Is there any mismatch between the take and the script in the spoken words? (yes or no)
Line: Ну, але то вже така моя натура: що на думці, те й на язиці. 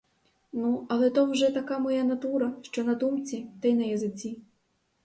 no